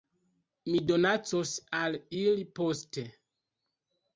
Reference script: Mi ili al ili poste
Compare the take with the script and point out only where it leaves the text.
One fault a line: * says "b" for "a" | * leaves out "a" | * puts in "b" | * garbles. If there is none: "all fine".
* says "donacos" for "ili"